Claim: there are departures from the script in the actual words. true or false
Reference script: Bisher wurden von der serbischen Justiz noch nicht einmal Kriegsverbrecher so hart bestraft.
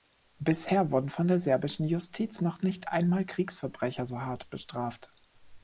false